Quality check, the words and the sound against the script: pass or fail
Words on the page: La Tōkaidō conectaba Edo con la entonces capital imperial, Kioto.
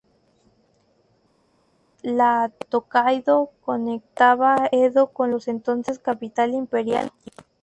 pass